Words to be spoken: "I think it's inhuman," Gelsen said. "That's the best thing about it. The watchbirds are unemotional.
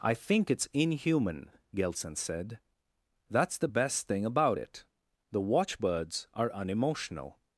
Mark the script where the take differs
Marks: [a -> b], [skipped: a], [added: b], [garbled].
"I think it's inhuman," Gelsen said. "That's the best thing about it. The watchbirds are unemotional.